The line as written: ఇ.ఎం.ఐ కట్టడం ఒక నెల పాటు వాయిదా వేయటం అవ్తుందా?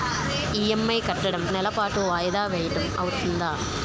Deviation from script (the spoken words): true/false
true